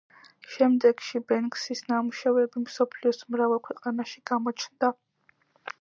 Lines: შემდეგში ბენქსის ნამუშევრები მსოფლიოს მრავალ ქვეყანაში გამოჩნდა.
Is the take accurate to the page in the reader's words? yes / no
yes